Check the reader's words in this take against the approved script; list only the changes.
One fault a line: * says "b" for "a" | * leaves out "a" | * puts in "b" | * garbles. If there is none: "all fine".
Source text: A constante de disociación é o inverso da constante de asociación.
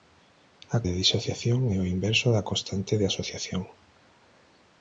* leaves out "constante"